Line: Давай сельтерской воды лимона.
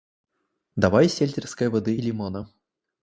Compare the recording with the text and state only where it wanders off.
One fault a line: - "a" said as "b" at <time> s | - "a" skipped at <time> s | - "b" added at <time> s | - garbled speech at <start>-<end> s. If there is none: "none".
none